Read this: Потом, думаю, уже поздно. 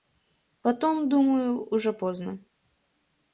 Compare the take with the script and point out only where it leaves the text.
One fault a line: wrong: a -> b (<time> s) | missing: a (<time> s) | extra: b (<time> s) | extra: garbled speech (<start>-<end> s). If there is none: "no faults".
no faults